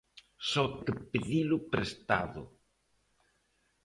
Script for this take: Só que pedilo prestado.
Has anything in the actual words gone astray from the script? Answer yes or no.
no